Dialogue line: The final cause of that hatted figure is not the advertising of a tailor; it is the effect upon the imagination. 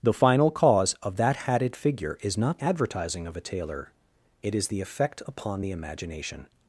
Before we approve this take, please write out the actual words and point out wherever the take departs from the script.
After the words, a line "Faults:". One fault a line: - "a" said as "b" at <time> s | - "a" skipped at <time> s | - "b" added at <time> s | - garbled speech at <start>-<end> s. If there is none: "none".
The final cause of that hatted figure is not advertising of a tailor; it is the effect upon the imagination.
Faults:
- "the" skipped at 2.6 s